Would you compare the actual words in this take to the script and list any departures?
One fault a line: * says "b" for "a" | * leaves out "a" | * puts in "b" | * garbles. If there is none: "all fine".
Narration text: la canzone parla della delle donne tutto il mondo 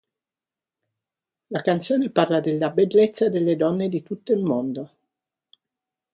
* puts in "bellezza"
* puts in "di"